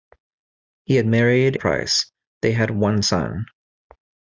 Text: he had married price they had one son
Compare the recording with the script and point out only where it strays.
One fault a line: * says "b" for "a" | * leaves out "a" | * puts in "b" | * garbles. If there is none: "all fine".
all fine